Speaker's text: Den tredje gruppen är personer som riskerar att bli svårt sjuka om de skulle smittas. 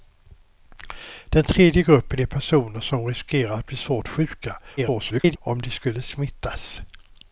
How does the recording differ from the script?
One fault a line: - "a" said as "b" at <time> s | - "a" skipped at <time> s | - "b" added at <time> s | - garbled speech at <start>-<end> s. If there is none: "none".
- garbled speech at 4.8-5.4 s